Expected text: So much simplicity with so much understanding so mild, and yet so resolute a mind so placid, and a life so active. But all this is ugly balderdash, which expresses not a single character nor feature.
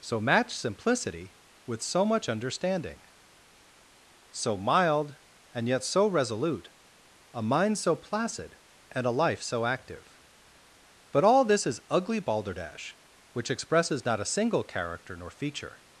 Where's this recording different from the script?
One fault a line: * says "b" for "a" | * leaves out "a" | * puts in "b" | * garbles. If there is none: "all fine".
* says "match" for "much"